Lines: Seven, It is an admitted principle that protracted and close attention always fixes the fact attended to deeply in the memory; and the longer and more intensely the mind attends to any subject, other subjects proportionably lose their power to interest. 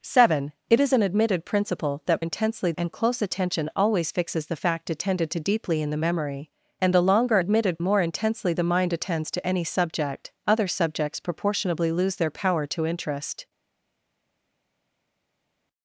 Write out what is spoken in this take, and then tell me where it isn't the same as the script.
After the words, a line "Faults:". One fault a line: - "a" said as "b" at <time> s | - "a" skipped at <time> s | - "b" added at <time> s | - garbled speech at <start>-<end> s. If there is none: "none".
Seven, It is an admitted principle that intensely and close attention always fixes the fact attended to deeply in the memory; and the longer admitted more intensely the mind attends to any subject, other subjects proportionably lose their power to interest.
Faults:
- "protracted" said as "intensely" at 2.2 s
- "and" said as "admitted" at 7.4 s